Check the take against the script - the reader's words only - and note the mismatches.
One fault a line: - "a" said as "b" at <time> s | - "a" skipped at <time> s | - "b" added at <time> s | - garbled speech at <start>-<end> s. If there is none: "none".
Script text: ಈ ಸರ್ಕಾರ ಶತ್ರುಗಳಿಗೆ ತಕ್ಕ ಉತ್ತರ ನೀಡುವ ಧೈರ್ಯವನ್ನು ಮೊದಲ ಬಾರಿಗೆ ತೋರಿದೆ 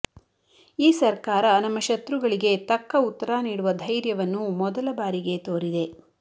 - "ನಮ್ಮ" added at 1.6 s